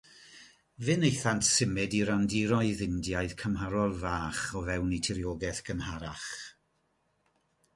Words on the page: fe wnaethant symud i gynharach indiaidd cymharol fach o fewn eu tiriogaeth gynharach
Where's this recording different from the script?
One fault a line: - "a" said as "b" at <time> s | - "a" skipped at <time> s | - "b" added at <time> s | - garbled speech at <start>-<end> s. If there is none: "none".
- "gynharach" said as "randiroedd" at 2.1 s